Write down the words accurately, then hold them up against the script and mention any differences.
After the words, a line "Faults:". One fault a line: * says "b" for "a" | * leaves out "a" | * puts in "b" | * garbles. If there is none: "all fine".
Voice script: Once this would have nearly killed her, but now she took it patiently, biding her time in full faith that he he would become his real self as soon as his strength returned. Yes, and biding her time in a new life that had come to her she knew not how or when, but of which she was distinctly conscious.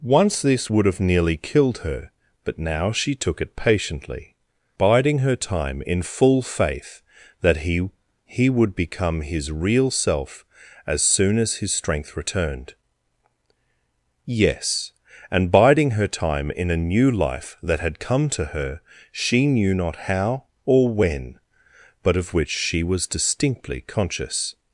Once this would have nearly killed her, but now she took it patiently, biding her time in full faith that he he would become his real self as soon as his strength returned. Yes, and biding her time in a new life that had come to her she knew not how or when, but of which she was distinctly conscious.
Faults:
all fine